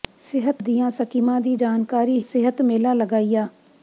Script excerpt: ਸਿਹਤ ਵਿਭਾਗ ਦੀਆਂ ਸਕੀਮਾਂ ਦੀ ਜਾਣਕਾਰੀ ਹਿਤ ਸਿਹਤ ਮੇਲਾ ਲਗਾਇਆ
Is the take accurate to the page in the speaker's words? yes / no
no